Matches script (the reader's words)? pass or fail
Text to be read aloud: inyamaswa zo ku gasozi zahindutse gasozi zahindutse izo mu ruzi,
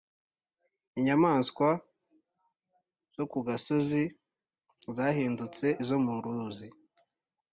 fail